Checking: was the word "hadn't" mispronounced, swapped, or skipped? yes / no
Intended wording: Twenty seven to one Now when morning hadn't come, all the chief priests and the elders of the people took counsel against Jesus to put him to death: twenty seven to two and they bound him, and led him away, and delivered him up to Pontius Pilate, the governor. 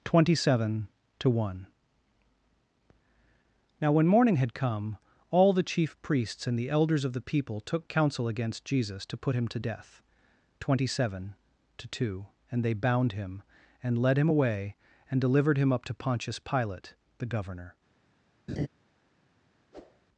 yes